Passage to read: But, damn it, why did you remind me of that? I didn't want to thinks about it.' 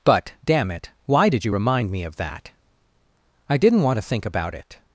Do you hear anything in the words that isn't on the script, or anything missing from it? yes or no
yes